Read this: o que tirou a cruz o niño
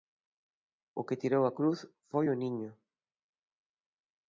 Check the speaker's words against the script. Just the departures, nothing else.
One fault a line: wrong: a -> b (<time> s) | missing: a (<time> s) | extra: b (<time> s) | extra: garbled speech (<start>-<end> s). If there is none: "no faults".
extra: foi (2.1 s)